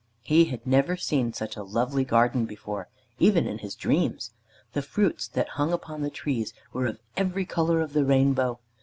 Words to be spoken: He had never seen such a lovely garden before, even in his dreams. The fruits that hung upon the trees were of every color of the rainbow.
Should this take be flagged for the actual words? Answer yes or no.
no